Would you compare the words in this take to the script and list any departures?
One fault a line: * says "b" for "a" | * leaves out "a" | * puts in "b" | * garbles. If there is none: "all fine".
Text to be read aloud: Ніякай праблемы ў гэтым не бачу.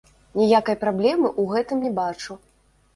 all fine